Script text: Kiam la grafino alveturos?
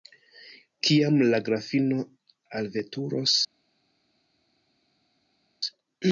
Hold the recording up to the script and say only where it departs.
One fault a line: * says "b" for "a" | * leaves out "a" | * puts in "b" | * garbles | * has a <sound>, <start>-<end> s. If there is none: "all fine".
all fine